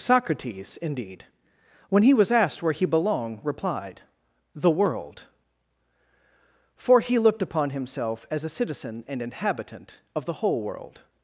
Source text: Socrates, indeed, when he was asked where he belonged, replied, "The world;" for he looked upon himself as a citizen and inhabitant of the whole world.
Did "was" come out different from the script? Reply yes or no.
no